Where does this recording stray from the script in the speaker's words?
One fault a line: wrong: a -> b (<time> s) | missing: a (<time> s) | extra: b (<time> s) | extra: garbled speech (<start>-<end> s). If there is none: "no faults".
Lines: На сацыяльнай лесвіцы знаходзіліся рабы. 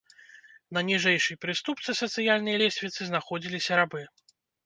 extra: ніжэйшай прыступцы (0.9 s)